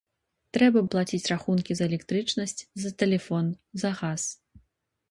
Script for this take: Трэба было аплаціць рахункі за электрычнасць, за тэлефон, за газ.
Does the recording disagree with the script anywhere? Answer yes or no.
yes